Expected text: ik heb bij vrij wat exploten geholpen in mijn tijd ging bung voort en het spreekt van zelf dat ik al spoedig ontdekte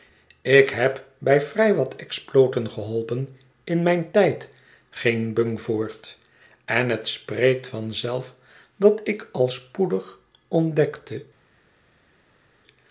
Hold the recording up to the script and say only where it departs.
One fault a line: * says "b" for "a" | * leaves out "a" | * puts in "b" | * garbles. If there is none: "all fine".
all fine